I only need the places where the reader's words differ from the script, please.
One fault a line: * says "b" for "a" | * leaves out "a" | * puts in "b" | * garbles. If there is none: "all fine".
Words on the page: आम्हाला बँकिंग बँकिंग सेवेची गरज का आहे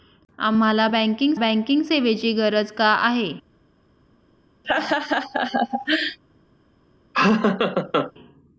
all fine